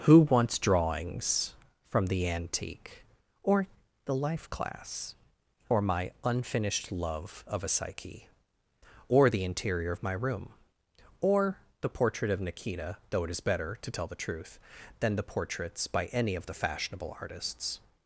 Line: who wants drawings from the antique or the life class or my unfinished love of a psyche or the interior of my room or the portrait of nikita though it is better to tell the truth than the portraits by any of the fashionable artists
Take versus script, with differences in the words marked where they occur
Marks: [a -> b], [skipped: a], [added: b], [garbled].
who wants drawings from the antique or the life class or my unfinished love of a psyche or the interior of my room or the portrait of nikita though it is better to tell the truth than the portraits by any of the fashionable artists